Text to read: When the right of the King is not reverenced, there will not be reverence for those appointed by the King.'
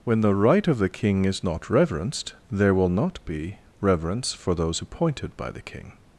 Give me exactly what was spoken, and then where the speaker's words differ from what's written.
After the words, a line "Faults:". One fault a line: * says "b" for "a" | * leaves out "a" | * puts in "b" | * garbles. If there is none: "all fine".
When the right of the King is not reverenced, there will not be reverence for those appointed by the King.'
Faults:
all fine